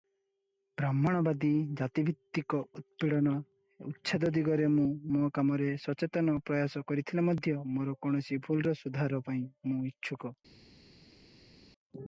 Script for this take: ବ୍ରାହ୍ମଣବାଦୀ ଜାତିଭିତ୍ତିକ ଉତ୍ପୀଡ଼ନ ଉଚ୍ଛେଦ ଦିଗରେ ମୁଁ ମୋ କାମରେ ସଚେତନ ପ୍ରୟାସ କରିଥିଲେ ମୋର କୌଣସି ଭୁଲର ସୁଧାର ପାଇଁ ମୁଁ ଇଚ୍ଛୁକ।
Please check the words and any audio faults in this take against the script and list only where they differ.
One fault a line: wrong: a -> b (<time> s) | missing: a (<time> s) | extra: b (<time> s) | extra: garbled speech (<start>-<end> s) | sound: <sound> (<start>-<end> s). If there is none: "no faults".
extra: ମଧ୍ୟ (7.3 s)